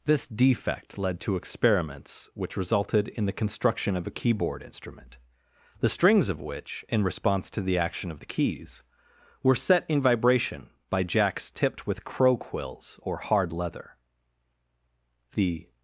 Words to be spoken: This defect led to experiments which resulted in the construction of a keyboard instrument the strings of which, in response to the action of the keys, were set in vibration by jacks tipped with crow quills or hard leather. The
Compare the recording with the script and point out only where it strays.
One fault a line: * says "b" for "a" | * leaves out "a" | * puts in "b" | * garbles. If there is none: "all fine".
all fine